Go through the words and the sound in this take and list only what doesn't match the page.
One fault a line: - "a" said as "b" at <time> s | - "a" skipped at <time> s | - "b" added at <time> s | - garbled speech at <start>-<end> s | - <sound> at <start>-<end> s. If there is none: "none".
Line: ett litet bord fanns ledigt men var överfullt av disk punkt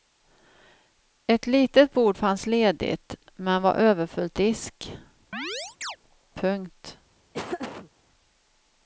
- "av" skipped at 4.4 s
- chirp at 5.3-6.0 s
- laugh at 7.3-7.9 s